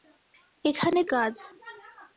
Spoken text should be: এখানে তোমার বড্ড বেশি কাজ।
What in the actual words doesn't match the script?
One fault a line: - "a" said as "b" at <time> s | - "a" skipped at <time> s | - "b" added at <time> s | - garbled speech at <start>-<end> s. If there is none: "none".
- "তোমার বড্ড বেশি" skipped at 1.0 s